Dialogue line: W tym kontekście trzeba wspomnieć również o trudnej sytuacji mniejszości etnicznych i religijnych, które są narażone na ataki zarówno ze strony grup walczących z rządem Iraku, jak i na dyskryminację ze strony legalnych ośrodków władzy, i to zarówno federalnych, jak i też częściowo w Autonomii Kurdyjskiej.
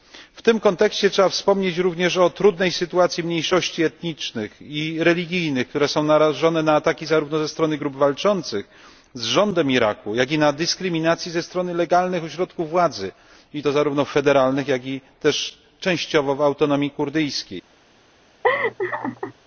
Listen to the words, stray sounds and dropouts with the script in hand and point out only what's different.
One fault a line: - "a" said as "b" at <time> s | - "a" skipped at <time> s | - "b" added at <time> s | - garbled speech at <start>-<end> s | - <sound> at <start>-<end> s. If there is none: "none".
- laugh at 18.4-19.3 s